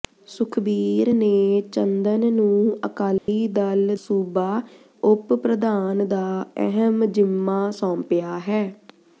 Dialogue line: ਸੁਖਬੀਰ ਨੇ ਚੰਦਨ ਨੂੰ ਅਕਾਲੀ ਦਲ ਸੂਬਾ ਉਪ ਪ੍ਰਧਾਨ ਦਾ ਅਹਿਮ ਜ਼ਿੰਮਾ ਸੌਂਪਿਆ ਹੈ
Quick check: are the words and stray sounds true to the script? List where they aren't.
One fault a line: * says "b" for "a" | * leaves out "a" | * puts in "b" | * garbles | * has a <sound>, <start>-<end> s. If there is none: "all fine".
* has a dropout, 3.2-3.3 s